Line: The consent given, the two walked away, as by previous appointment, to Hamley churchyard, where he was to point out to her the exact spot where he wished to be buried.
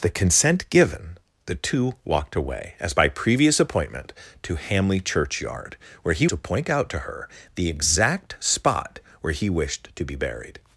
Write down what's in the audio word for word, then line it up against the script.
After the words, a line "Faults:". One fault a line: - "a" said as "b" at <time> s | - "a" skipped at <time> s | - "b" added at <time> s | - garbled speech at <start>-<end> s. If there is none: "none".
The consent given, the two walked away, as by previous appointment, to Hamley churchyard, where he to point out to her the exact spot where he wished to be buried.
Faults:
- "was" skipped at 6.3 s